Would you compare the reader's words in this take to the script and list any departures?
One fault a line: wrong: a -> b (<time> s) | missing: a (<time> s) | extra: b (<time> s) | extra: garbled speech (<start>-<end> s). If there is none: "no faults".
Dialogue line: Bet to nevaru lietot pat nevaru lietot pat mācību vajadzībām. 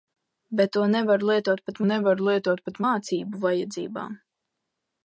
no faults